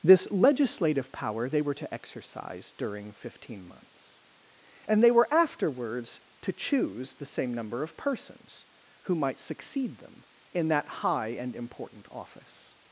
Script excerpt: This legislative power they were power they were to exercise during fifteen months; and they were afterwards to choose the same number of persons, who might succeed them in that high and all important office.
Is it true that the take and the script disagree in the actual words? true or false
true